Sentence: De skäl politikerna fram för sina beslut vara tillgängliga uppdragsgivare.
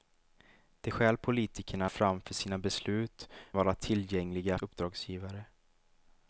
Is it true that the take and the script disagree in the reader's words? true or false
false